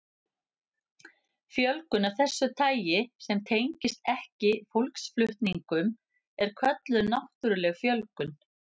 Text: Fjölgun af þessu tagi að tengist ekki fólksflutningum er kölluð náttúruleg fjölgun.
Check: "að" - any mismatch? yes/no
yes